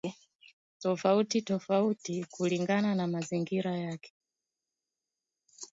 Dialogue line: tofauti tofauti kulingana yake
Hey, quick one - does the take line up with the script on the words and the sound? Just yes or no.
no